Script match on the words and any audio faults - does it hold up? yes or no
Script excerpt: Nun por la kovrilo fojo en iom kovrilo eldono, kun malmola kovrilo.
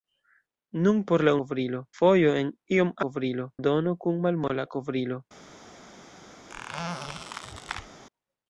no